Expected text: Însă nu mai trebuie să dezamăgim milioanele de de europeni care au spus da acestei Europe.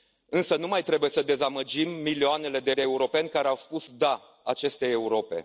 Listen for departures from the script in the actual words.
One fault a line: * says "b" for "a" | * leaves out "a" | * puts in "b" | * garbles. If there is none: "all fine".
all fine